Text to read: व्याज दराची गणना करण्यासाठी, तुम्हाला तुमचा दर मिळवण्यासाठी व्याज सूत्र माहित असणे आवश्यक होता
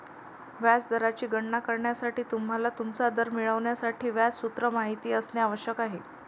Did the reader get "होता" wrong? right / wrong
wrong